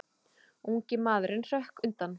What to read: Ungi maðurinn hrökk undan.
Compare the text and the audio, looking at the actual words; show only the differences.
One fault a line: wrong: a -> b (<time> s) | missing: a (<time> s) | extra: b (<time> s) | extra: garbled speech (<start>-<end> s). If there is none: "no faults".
no faults